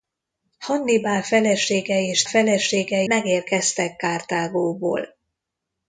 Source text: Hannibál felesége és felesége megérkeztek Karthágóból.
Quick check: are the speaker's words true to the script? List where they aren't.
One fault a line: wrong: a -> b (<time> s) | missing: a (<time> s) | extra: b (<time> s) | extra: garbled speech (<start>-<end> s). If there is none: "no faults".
no faults